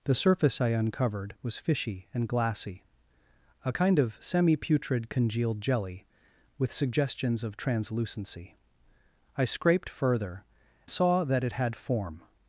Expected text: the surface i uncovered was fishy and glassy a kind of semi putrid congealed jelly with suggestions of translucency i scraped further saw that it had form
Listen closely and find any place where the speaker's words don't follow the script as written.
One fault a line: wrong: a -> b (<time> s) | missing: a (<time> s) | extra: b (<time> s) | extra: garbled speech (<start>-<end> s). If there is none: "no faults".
no faults